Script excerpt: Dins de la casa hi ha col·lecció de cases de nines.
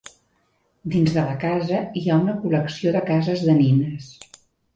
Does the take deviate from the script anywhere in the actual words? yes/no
yes